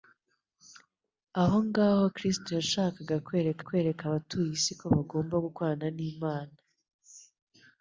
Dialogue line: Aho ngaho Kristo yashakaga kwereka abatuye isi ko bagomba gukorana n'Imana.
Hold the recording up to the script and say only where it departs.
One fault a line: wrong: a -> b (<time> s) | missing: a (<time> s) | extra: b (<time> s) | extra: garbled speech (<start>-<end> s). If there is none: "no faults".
extra: kwereka (3.7 s)